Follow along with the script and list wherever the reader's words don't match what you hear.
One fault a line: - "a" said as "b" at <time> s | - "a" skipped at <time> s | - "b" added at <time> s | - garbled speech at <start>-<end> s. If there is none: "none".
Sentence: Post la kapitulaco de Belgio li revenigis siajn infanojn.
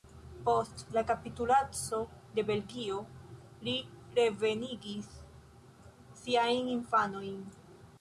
none